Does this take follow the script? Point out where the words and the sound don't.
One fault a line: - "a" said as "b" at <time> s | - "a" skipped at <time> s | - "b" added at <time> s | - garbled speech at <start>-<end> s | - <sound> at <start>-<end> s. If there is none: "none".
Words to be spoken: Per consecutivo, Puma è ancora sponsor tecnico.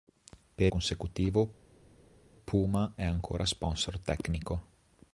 none